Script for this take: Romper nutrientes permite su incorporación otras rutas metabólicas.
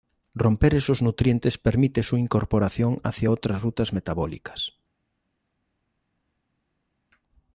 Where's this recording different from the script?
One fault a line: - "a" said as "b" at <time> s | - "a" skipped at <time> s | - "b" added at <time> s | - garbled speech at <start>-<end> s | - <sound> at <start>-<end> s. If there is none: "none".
- "esos" added at 0.7 s
- "hacia" added at 3.0 s